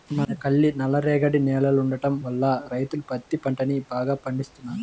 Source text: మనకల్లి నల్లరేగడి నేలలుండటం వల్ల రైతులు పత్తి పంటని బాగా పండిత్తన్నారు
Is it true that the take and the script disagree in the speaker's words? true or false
false